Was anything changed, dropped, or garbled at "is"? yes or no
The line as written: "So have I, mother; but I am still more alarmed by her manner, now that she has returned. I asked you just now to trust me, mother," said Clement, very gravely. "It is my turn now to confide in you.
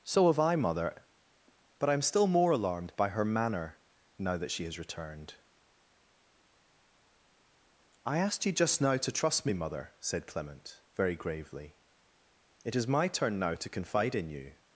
no